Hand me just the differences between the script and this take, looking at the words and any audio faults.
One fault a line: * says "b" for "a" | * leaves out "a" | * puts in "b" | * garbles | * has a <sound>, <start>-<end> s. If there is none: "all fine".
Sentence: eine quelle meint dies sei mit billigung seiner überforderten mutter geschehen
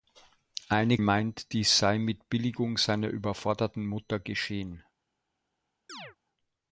* leaves out "quelle"
* has a chirp, 5.9-6.2 s